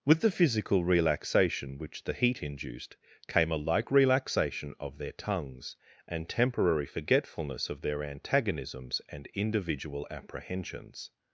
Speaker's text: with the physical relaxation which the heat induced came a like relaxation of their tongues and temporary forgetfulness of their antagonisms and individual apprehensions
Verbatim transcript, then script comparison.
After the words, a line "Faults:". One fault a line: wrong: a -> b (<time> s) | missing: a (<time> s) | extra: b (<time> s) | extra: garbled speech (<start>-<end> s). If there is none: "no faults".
with the physical relaxation which the heat induced came a like relaxation of their tongues and temporary forgetfulness of their antagonisms and individual apprehensions
Faults:
no faults